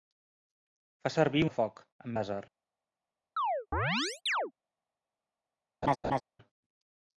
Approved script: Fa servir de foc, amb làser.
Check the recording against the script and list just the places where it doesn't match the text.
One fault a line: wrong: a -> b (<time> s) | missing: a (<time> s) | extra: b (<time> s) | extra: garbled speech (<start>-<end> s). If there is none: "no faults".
no faults